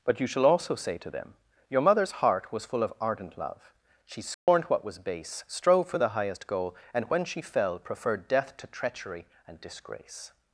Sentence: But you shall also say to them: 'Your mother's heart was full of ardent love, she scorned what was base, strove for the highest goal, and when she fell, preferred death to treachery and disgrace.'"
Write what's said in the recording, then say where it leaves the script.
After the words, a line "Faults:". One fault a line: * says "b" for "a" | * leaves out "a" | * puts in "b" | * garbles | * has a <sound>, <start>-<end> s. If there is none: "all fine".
But you shall also say to them: 'Your mother's heart was full of ardent love, she scorned what was base, strove for the highest goal, and when she fell, preferred death to treachery and disgrace.'"
Faults:
* has a dropout, 4.3-4.5 s